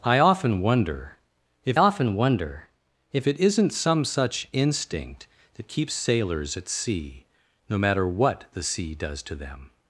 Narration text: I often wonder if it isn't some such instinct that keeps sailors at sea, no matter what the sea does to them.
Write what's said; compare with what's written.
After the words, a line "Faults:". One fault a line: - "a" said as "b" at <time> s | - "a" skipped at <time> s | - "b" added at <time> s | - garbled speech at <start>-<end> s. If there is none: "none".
I often wonder if often wonder if it isn't some such instinct that keeps sailors at sea, no matter what the sea does to them.
Faults:
- "often wonder if" added at 1.7 s